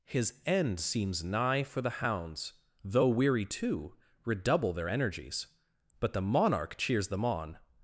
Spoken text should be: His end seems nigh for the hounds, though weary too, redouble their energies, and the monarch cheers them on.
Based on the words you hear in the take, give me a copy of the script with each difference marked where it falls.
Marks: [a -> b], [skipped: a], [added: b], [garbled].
His end seems nigh for the hounds, though weary too, redouble their energies, [and -> but] the monarch cheers them on.